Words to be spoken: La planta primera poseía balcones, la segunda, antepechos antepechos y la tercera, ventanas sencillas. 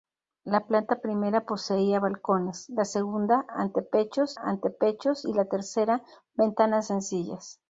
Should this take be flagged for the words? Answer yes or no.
no